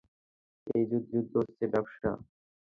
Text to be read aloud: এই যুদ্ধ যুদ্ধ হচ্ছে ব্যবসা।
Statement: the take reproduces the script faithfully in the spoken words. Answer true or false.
true